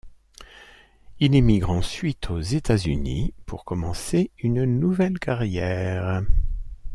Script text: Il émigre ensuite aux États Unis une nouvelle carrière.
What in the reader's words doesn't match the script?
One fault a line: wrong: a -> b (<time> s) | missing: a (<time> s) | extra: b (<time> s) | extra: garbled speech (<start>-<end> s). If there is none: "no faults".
extra: pour commencer (3.5 s)